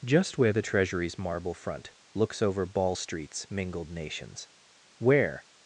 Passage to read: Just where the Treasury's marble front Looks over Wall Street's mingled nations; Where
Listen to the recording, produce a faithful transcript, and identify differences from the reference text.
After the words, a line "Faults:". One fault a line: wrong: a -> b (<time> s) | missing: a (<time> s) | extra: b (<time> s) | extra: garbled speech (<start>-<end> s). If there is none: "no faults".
Just where the Treasury's marble front Looks over Ball Street's mingled nations; Where
Faults:
wrong: Wall -> Ball (2.6 s)